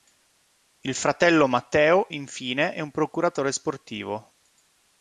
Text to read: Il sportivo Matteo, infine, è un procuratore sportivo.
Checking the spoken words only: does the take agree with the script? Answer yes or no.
no